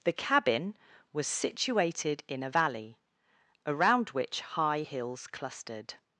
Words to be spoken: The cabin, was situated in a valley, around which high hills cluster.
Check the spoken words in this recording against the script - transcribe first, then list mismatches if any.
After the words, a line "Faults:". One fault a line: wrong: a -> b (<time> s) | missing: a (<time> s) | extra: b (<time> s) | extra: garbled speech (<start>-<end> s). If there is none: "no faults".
The cabin, was situated in a valley, around which high hills clustered.
Faults:
wrong: cluster -> clustered (5.3 s)